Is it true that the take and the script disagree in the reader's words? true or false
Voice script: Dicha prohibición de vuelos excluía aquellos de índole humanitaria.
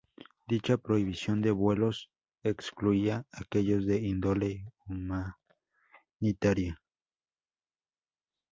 false